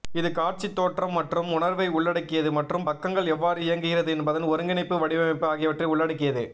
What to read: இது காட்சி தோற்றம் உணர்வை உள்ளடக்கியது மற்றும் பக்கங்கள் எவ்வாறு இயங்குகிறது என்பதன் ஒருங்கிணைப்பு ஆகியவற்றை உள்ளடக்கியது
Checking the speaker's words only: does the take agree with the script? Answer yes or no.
no